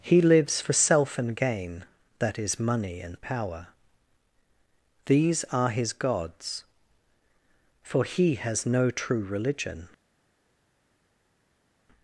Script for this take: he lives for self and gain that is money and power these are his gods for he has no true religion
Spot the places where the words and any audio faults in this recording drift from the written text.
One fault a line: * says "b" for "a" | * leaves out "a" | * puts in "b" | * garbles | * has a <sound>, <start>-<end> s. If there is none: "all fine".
all fine